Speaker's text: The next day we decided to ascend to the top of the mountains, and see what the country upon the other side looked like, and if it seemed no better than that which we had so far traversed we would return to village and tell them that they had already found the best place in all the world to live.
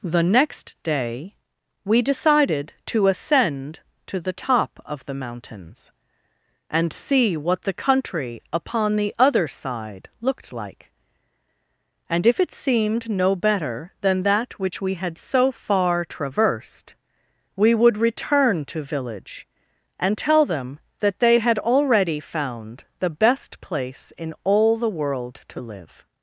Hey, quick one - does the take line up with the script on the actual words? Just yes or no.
yes